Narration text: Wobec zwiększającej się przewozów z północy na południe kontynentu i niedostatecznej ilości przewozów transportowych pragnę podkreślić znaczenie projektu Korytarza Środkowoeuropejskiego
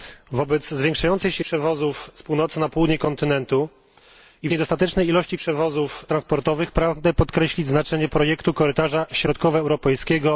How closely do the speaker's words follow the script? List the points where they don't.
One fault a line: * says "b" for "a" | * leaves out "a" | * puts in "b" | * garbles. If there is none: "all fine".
all fine